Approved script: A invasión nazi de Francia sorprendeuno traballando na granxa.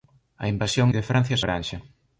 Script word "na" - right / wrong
wrong